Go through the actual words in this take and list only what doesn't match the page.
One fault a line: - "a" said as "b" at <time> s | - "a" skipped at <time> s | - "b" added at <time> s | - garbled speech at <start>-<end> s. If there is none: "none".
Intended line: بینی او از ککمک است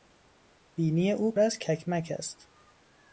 none